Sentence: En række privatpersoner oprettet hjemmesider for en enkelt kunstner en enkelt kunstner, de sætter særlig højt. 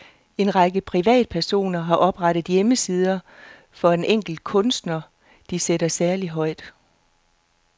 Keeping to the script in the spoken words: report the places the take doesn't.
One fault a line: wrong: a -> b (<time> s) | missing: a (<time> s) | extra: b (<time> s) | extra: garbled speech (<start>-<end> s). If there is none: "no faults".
extra: har (1.8 s)
missing: en enkelt kunstner (5.0 s)